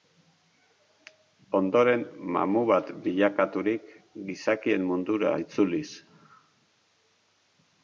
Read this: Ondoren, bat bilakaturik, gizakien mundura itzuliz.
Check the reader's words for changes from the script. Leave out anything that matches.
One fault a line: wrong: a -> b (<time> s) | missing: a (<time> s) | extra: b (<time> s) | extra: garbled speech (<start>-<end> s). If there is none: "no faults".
extra: mamu (2.4 s)